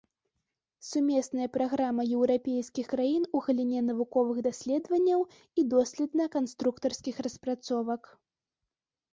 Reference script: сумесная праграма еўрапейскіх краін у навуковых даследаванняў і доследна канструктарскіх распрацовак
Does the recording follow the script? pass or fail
fail